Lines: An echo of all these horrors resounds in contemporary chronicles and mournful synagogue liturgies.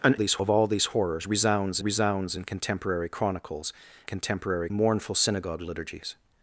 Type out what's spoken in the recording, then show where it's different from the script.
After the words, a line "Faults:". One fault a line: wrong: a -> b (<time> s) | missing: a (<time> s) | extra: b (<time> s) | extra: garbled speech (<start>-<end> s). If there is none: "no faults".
An these of all these horrors resounds resounds in contemporary chronicles contemporary mournful synagogue liturgies.
Faults:
wrong: echo -> these (0.2 s)
extra: resounds (1.8 s)
wrong: and -> contemporary (4.0 s)